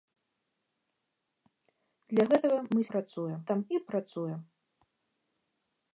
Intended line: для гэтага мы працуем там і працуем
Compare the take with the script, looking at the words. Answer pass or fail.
pass